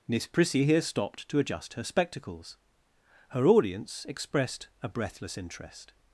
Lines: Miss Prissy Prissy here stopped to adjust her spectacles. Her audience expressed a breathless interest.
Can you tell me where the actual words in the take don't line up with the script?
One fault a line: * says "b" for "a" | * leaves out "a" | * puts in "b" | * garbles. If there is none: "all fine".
* leaves out "Prissy"